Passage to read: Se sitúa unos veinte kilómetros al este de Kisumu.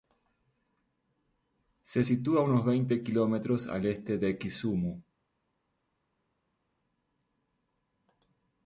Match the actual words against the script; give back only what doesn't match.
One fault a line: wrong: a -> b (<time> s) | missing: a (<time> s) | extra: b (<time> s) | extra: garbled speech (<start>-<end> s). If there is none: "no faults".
no faults